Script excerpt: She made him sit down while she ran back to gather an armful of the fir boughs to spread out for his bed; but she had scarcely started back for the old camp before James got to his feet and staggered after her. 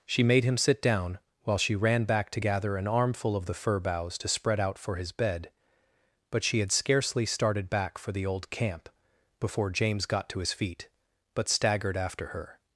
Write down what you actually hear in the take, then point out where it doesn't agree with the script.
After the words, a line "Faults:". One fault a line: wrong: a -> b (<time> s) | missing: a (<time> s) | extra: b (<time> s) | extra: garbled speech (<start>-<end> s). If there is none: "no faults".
She made him sit down while she ran back to gather an armful of the fir boughs to spread out for his bed; but she had scarcely started back for the old camp before James got to his feet but staggered after her.
Faults:
wrong: and -> but (11.3 s)